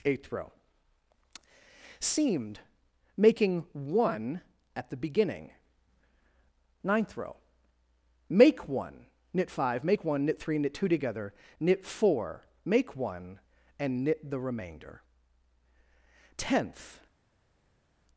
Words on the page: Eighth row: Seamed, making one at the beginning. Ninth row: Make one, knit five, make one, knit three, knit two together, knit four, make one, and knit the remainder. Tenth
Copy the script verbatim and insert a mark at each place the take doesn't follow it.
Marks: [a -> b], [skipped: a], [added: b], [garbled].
Eighth row: Seamed, making one at the beginning. Ninth row: Make one, knit five, make one, knit three, knit two together, knit four, make one, and knit the remainder. Tenth